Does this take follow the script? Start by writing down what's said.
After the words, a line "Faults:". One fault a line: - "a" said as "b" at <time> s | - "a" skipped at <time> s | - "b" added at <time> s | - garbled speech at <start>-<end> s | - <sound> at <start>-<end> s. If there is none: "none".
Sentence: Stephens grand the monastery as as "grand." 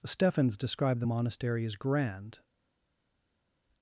Stephens described the monastery as "grand."
Faults:
- "grand" said as "described" at 0.6 s
- "as" skipped at 1.7 s